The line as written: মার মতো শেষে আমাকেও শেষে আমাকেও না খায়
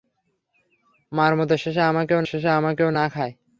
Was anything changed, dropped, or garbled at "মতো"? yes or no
no